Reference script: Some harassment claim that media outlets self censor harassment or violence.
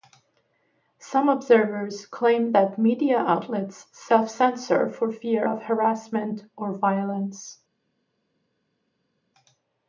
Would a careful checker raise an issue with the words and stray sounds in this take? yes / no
yes